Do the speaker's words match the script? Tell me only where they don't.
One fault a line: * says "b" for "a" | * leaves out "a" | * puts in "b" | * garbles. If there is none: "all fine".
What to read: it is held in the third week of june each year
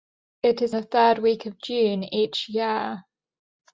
* leaves out "held in"